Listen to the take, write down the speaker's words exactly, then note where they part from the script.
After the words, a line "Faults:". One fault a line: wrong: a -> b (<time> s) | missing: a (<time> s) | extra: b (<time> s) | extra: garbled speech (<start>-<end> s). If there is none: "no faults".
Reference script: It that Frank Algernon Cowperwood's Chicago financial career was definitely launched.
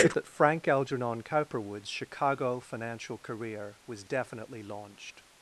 It that Frank Algernon Cowperwood's Chicago financial career was definitely launched.
Faults:
no faults